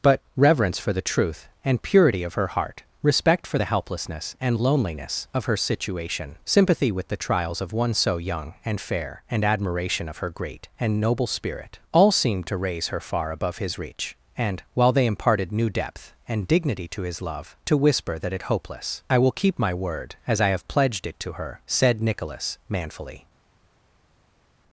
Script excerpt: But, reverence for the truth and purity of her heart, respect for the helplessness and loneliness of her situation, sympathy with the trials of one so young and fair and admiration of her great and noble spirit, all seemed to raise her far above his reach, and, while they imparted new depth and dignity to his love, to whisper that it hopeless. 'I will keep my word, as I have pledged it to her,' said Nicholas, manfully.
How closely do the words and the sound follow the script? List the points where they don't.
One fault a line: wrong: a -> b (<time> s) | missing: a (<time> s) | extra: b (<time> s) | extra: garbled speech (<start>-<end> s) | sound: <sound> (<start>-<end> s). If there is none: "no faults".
no faults